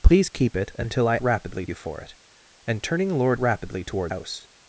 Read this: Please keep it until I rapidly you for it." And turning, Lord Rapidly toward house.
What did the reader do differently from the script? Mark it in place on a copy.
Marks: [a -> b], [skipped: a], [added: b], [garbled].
Please keep it until I rapidly you for it." And turning, Lord Rapidly toward house.